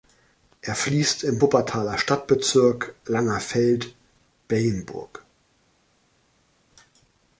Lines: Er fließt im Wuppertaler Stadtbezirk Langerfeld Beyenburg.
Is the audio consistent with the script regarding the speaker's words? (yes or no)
yes